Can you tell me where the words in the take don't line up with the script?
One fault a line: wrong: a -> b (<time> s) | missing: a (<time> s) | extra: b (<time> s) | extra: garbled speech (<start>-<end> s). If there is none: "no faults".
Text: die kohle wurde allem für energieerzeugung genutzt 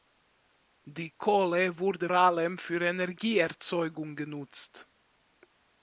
no faults